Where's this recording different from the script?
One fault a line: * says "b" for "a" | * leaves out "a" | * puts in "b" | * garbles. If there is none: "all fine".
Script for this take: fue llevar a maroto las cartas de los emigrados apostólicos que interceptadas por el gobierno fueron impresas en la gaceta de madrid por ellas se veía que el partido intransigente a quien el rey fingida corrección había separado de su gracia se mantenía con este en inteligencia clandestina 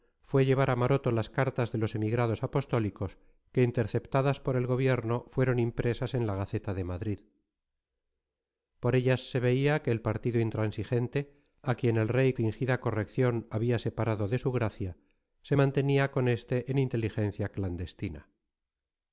all fine